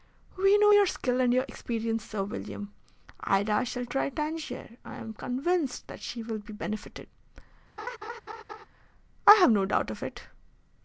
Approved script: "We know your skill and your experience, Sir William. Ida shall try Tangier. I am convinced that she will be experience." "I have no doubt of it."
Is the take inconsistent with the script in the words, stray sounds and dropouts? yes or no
yes